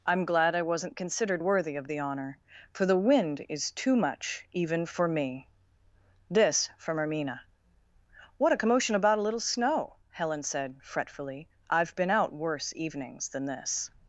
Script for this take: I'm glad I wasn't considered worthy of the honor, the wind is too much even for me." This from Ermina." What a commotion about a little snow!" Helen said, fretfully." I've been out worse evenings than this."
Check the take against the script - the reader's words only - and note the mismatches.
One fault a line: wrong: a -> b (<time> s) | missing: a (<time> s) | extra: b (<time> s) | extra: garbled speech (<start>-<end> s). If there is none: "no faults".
extra: for (2.7 s)